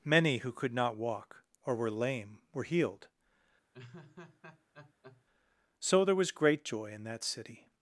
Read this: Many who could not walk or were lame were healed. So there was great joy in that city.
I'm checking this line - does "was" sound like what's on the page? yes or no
yes